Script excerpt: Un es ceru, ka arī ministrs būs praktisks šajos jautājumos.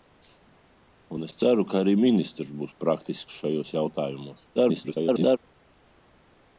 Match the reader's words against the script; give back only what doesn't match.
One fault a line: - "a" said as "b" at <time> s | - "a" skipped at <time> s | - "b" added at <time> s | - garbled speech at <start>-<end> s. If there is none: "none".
- garbled speech at 4.6-5.4 s